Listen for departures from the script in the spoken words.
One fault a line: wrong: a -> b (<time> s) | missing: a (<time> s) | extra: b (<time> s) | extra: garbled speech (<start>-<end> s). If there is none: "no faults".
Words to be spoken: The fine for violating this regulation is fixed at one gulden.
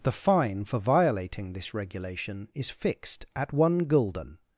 no faults